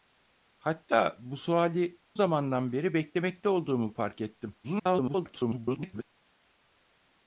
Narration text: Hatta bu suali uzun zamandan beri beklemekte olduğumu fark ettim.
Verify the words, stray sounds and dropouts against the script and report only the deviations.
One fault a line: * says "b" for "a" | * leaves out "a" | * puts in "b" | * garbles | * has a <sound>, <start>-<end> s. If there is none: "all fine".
* leaves out "uzun"
* garbles